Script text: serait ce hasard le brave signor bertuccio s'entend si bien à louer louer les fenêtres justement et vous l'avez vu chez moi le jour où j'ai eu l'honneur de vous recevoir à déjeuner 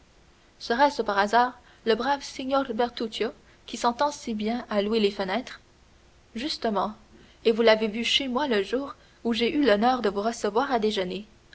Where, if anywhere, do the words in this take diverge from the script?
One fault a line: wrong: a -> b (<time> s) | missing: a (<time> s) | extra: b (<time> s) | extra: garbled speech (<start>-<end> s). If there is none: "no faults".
extra: par (1.0 s)
extra: qui (3.7 s)
missing: louer (5.0 s)